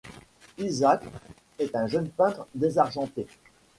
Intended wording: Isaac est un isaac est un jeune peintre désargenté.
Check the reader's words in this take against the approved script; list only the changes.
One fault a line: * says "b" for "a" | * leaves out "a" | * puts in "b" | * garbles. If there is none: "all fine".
* leaves out "isaac est un"